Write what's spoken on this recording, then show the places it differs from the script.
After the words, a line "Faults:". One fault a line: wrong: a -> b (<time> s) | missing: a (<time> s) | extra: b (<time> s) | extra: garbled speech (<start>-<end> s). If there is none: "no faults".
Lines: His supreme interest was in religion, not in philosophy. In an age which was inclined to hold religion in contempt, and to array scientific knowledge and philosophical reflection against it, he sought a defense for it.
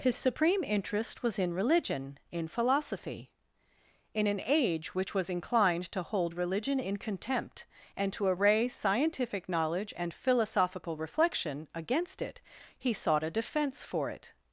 His supreme interest was in religion, in philosophy. In an age which was inclined to hold religion in contempt, and to array scientific knowledge and philosophical reflection against it, he sought a defense for it.
Faults:
missing: not (2.2 s)